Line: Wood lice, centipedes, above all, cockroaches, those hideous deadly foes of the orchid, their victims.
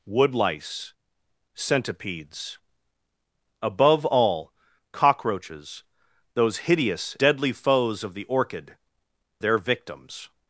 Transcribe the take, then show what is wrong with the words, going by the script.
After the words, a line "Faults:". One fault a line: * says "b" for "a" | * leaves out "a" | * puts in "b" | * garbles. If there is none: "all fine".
Wood lice, centipedes, above all, cockroaches, those hideous deadly foes of the orchid, their victims.
Faults:
all fine